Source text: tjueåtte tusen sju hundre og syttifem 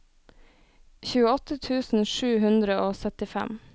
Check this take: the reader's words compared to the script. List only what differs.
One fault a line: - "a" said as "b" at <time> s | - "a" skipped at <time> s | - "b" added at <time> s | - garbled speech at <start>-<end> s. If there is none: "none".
none